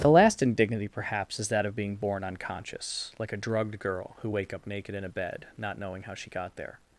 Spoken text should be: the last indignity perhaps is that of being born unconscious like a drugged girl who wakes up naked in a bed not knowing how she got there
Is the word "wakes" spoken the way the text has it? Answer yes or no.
no